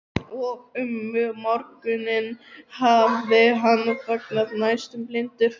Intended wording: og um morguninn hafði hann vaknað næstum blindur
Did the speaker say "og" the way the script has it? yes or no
yes